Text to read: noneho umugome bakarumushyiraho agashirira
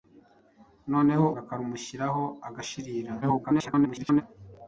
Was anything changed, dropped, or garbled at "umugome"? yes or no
yes